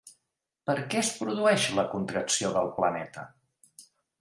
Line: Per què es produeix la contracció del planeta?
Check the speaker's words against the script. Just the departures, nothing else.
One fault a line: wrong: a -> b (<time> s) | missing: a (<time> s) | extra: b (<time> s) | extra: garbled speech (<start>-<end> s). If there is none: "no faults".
no faults